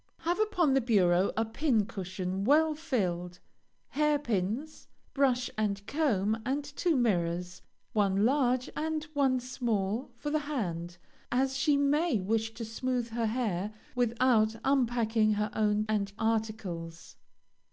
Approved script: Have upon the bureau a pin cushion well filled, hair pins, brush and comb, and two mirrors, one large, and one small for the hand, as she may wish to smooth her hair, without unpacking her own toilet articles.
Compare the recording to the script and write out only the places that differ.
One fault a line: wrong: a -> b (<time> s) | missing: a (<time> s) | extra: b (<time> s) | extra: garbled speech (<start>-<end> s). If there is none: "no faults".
wrong: toilet -> and (15.9 s)